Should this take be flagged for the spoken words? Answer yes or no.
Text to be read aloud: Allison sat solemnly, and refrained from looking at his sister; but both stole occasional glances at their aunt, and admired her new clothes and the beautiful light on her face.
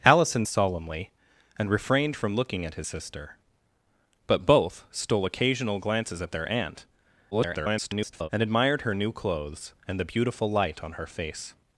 yes